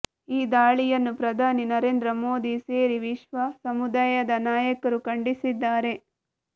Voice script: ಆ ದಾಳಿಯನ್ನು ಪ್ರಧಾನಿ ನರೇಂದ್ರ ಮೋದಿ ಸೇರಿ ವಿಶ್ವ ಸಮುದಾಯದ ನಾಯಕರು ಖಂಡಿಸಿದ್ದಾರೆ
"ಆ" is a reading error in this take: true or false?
true